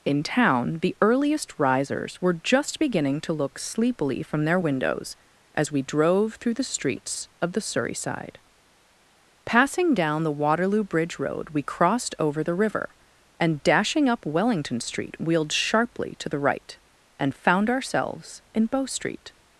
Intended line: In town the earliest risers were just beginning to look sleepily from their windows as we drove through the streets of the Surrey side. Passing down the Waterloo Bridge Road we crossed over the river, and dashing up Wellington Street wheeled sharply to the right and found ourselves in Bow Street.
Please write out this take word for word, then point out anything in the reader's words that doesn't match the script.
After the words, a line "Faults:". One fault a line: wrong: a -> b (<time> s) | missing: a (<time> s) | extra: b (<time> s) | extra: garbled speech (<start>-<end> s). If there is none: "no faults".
In town the earliest risers were just beginning to look sleepily from their windows as we drove through the streets of the Surrey side. Passing down the Waterloo Bridge Road we crossed over the river, and dashing up Wellington Street wheeled sharply to the right and found ourselves in Bow Street.
Faults:
no faults